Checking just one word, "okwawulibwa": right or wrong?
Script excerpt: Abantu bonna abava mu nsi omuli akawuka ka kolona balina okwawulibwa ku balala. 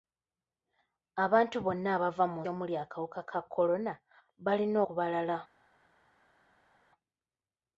wrong